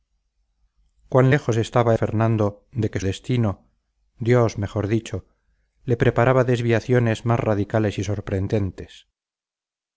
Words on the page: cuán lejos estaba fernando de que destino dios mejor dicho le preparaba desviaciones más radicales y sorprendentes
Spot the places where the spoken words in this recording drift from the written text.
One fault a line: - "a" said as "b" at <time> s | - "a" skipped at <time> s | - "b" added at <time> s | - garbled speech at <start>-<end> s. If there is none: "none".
none